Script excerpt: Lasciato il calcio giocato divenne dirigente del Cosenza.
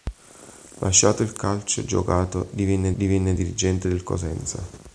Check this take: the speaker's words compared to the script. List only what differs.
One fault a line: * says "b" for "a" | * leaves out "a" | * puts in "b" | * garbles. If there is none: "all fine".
* puts in "divenne"